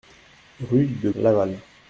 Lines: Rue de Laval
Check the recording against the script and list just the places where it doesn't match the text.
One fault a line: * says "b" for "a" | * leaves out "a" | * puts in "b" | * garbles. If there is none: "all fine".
all fine